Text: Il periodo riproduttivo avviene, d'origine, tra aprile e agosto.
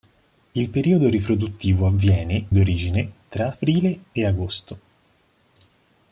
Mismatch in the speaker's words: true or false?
false